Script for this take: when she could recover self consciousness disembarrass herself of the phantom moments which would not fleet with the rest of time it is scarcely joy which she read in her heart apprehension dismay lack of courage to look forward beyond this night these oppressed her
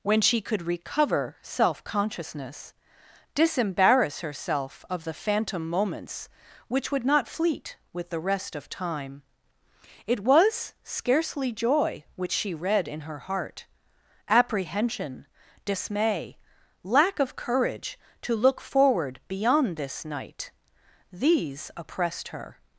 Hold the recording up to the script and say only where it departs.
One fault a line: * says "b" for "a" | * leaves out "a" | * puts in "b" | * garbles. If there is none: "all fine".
* says "was" for "is"